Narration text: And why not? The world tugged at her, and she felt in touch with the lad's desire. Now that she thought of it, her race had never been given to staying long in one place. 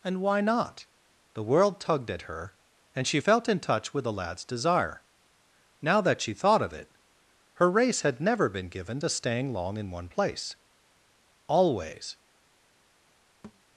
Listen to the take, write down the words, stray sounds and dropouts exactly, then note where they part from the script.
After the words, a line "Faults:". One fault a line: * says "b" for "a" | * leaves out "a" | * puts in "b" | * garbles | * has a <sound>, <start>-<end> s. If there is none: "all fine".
And why not? The world tugged at her, and she felt in touch with the lad's desire. Now that she thought of it, her race had never been given to staying long in one place. Always
Faults:
* puts in "Always"
* has a thud, 13.4-13.6 s